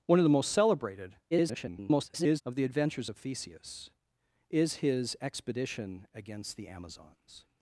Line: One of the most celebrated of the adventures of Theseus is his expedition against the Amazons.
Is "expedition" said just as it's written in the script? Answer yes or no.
yes